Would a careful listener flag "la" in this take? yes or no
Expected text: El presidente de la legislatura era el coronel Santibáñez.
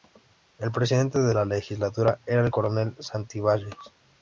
no